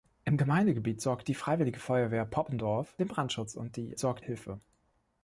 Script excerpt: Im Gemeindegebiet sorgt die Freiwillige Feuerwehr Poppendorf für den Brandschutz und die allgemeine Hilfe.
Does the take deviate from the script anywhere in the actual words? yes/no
yes